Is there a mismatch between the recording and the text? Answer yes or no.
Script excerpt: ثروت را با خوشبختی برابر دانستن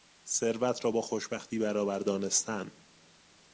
no